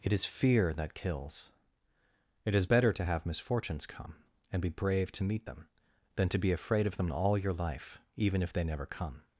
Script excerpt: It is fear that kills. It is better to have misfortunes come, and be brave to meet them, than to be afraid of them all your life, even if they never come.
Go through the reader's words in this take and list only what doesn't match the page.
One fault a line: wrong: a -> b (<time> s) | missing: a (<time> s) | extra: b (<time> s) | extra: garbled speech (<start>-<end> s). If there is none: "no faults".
no faults